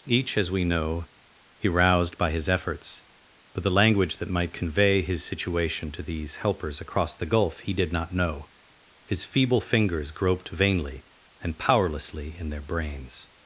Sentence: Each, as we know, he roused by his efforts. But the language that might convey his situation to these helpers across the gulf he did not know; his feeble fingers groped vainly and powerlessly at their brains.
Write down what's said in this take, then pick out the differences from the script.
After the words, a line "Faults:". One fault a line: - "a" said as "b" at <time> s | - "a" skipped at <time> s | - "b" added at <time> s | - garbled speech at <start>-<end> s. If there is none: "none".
Each, as we know, he roused by his efforts. But the language that might convey his situation to these helpers across the gulf he did not know; his feeble fingers groped vainly and powerlessly in their brains.
Faults:
- "at" said as "in" at 12.4 s